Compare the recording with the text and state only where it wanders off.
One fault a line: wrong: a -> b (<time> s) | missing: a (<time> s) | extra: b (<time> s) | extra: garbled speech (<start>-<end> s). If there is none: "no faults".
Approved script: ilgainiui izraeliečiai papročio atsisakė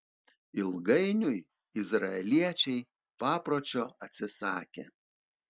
no faults